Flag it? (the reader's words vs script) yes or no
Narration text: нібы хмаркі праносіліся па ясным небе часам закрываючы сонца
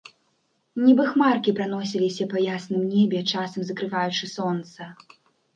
no